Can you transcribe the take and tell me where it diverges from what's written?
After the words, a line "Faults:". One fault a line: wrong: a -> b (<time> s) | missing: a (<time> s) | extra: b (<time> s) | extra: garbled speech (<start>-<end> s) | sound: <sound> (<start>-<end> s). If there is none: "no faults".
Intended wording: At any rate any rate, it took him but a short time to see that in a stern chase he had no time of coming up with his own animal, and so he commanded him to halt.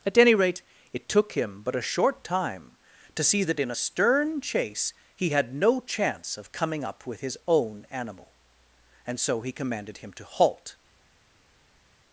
At any rate, it took him but a short time to see that in a stern chase he had no chance of coming up with his own animal, and so he commanded him to halt.
Faults:
missing: any rate (0.6 s)
wrong: time -> chance (5.8 s)